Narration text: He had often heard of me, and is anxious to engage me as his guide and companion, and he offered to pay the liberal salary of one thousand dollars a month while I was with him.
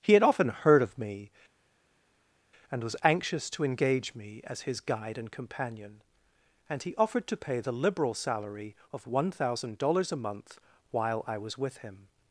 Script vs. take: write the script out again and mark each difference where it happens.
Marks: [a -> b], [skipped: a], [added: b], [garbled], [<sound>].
He had often heard of me, and [is -> was] anxious to engage me as his guide and companion, and he offered to pay the liberal salary of one thousand dollars a month while I was with him.